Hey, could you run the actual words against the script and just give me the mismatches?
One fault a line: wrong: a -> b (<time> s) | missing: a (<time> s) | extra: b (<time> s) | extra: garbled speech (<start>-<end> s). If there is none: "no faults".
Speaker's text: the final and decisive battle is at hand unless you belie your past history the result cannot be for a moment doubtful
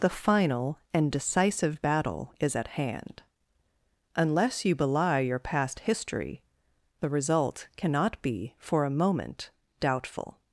no faults